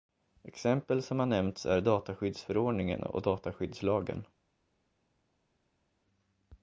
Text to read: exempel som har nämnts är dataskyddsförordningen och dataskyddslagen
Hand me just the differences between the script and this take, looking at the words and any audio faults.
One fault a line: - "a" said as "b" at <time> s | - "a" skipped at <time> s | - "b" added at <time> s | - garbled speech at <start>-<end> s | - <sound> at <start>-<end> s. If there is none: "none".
none